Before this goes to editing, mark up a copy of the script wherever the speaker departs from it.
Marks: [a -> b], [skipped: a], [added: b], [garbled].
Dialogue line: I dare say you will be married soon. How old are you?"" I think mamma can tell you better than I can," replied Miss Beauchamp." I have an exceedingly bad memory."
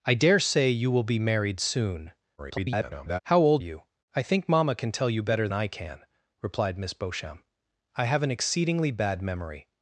I dare say you will be married soon. [garbled] How old [skipped: are] you?"" I think mamma can tell you better [skipped: than] I can," replied Miss Beauchamp." I have an exceedingly bad memory."